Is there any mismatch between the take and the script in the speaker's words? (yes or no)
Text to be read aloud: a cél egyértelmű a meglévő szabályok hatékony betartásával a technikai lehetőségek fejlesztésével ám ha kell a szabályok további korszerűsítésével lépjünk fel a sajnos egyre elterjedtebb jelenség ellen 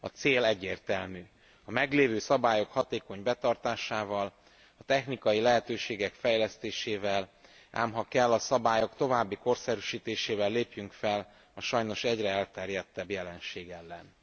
no